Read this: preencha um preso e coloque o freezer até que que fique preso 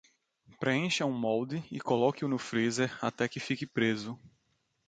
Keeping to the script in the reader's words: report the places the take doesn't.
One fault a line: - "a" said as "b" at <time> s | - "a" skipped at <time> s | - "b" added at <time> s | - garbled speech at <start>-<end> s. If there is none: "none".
- "preso" said as "molde" at 1.1 s
- "no" added at 2.3 s
- "que" skipped at 3.4 s